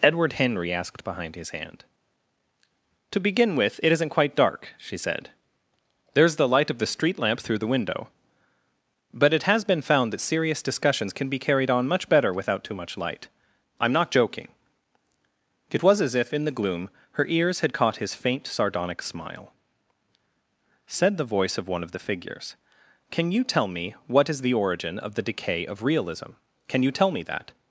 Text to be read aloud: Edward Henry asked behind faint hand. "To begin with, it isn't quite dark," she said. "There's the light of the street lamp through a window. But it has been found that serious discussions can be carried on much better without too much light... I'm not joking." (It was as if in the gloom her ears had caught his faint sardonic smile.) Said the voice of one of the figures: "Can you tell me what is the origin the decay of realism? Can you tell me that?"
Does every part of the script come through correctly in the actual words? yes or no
no